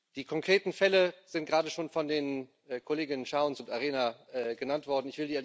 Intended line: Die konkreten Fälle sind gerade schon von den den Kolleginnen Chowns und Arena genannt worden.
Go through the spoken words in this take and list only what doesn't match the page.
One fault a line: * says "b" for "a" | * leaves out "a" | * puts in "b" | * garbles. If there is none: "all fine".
* leaves out "den"